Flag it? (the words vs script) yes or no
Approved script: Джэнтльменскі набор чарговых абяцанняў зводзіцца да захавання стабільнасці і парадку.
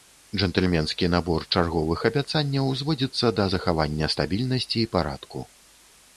no